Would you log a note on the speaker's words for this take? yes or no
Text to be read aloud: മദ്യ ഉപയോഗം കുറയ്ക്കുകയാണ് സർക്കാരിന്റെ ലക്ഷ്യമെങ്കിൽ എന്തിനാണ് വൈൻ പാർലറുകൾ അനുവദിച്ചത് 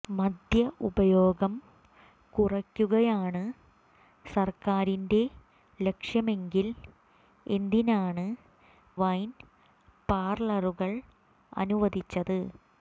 no